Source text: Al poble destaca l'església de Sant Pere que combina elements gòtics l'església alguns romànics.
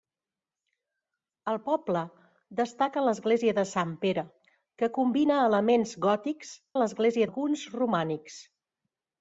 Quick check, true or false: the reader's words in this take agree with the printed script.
true